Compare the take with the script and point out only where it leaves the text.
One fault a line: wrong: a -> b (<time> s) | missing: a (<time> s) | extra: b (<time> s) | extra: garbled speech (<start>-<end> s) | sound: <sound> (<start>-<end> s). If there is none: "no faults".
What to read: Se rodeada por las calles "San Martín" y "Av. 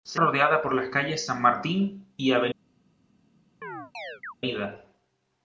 sound: chirp (3.6-4.3 s)